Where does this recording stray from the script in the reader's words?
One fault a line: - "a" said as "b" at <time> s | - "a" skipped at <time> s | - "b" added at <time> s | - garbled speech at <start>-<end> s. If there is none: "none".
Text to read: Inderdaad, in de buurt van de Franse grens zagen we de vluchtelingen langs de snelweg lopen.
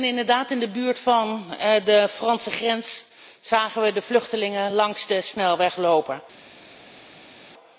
none